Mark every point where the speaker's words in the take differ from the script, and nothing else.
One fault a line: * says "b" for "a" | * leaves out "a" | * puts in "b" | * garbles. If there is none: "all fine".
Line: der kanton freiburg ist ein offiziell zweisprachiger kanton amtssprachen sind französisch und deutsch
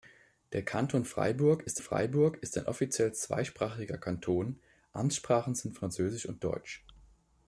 * puts in "freiburg ist"